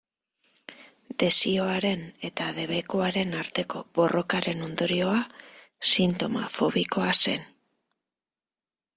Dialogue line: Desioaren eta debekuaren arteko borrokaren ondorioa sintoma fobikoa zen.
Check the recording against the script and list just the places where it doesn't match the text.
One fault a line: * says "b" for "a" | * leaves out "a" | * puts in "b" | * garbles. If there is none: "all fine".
all fine